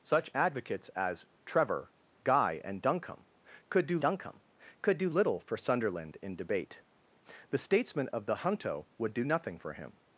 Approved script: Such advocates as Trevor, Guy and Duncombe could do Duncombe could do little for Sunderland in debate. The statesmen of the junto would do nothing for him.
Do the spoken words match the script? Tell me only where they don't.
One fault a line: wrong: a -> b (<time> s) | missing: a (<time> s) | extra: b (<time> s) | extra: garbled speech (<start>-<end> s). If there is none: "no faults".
no faults